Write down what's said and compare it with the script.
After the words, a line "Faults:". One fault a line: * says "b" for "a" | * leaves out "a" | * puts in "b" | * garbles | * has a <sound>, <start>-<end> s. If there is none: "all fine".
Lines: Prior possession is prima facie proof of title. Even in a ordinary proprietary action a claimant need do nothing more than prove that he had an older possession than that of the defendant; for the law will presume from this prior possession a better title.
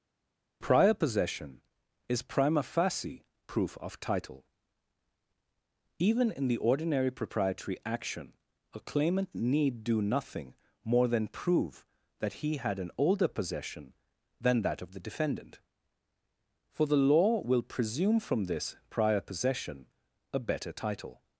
Prior possession is prima facie proof of title. Even in the ordinary proprietary action a claimant need do nothing more than prove that he had an older possession than that of the defendant; for the law will presume from this prior possession a better title.
Faults:
* says "the" for "a"